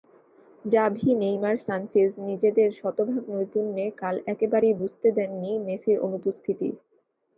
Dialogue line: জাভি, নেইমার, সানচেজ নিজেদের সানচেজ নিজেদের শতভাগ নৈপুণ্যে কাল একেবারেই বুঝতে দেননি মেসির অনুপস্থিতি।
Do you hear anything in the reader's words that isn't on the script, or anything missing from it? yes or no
yes